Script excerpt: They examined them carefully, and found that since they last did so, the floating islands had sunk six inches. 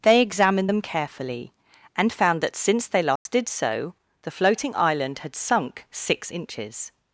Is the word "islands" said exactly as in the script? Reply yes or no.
no